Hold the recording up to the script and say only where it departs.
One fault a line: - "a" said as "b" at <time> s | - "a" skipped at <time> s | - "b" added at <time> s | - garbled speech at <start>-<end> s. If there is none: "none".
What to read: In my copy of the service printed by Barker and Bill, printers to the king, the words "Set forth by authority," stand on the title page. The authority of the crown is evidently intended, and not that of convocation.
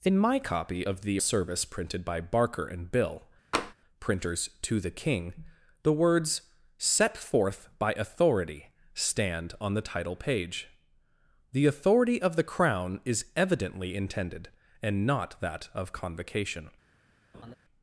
none